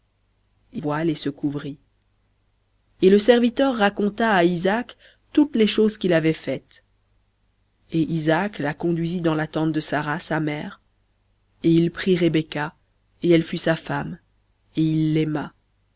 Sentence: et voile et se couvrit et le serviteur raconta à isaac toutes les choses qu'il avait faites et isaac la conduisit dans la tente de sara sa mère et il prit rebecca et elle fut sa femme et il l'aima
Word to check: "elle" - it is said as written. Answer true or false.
true